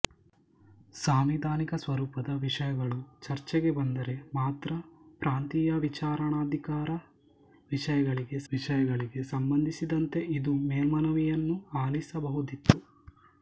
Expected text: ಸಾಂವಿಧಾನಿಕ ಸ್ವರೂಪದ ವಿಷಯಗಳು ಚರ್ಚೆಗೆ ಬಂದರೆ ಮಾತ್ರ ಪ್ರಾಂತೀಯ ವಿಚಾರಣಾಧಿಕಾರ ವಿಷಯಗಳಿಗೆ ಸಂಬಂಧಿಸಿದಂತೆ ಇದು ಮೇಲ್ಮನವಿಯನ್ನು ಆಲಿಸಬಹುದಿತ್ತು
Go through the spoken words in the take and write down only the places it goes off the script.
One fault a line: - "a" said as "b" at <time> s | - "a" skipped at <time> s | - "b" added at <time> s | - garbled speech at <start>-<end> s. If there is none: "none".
- "ವಿಷಯಗಳಿಗೆ" added at 8.5 s